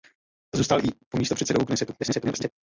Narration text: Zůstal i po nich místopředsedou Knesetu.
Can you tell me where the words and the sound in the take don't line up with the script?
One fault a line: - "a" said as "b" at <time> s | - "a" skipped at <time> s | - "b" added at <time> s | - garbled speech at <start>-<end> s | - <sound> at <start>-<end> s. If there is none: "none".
- "nich" skipped at 1.2 s
- garbled speech at 2.0-2.5 s